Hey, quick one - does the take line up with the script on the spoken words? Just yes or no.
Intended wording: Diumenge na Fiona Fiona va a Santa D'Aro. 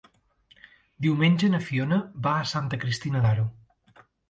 no